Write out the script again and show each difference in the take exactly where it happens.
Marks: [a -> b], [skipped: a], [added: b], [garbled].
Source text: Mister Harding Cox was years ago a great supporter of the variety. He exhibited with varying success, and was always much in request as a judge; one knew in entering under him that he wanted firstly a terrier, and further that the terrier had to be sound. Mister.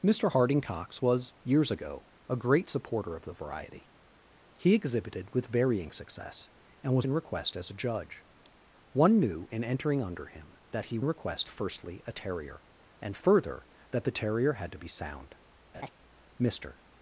Mister Harding Cox was years ago a great supporter of the variety. He exhibited with varying success, and was [skipped: always much] in request as a judge; one knew in entering under him that he [wanted -> request] firstly a terrier, and further that the terrier had to be sound. Mister.